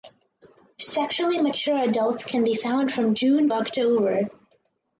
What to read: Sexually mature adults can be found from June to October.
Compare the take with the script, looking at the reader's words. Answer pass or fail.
fail